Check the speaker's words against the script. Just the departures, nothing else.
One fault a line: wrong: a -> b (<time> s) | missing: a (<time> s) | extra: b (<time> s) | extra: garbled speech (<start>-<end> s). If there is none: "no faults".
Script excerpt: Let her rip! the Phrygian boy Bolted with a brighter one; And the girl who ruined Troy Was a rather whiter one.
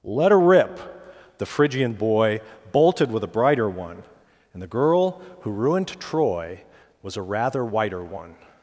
no faults